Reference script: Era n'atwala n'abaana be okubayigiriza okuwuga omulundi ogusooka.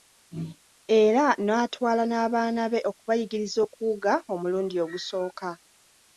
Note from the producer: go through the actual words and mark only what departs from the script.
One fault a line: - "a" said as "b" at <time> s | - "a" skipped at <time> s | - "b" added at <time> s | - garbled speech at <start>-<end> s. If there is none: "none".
none